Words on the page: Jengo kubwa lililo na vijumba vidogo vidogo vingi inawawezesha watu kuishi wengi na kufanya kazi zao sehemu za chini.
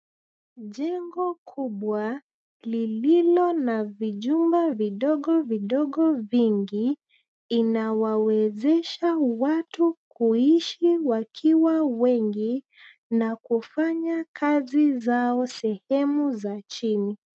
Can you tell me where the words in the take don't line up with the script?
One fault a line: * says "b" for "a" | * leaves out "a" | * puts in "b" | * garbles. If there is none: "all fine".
* puts in "wakiwa"